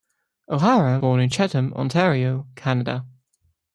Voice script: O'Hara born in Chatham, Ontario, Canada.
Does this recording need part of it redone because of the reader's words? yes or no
no